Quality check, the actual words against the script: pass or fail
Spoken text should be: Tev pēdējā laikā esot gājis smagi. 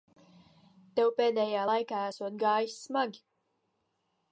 pass